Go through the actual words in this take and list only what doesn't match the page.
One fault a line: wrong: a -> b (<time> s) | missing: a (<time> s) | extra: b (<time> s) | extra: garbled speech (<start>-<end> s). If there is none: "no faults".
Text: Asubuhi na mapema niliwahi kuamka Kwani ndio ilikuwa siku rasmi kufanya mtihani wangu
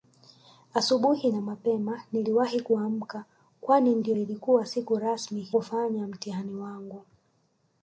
no faults